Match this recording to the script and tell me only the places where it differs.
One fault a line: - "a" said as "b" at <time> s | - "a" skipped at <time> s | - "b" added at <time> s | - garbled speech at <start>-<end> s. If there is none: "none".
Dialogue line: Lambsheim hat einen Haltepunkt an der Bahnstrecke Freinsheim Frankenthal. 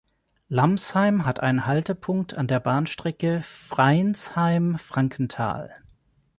none